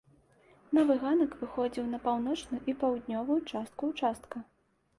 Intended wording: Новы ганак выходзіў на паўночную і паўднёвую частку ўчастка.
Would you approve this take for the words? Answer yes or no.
yes